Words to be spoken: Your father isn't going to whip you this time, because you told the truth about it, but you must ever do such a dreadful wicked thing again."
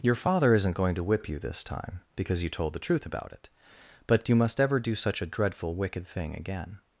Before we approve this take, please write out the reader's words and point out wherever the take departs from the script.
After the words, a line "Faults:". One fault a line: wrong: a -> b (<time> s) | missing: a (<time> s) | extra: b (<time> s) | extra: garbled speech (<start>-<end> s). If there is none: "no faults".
Your father isn't going to whip you this time, because you told the truth about it, but you must ever do such a dreadful wicked thing again."
Faults:
no faults